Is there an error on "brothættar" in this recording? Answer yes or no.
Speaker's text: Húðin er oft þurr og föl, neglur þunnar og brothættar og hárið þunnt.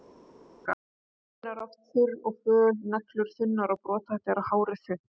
no